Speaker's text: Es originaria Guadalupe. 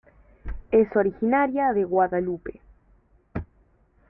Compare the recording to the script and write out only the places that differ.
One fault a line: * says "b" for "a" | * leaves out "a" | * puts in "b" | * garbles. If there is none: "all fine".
* puts in "de"